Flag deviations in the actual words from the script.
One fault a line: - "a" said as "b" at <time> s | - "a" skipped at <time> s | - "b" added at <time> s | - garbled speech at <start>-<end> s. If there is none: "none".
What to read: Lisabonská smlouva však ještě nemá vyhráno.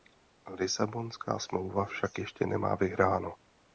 none